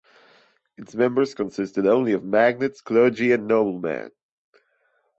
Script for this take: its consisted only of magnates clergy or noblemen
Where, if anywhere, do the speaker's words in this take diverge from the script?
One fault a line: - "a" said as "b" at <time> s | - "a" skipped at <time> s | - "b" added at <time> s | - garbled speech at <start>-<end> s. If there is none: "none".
- "members" added at 0.9 s
- "or" said as "and" at 3.3 s